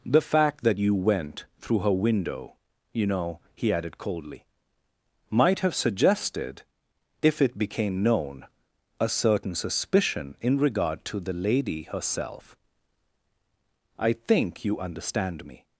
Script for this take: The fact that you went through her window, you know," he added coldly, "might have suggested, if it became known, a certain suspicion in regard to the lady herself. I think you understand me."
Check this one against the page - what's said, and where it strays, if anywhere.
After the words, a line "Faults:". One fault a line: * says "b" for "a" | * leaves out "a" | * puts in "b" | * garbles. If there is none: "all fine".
The fact that you went through her window, you know," he added coldly, "might have suggested, if it became known, a certain suspicion in regard to the lady herself. I think you understand me."
Faults:
all fine